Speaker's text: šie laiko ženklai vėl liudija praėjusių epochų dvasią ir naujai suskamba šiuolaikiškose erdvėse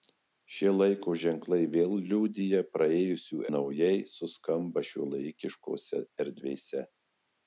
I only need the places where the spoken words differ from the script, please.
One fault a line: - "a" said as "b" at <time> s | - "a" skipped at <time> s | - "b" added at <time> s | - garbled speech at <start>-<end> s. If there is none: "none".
- "epochų dvasią ir" skipped at 3.4 s